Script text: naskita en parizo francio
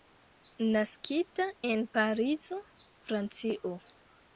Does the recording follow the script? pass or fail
pass